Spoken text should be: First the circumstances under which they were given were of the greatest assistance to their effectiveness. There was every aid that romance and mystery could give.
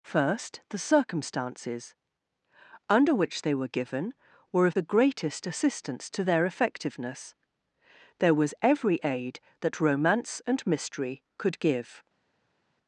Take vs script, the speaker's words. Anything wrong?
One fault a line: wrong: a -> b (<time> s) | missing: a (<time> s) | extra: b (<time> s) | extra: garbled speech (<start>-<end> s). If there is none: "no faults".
no faults